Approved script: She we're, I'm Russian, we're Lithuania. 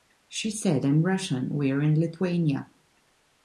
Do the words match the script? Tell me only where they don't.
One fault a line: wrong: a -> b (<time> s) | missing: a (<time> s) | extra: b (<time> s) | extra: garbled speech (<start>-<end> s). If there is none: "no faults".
wrong: we're -> said (0.5 s)
extra: in (1.8 s)